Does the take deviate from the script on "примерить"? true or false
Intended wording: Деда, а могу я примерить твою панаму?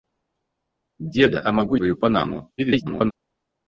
true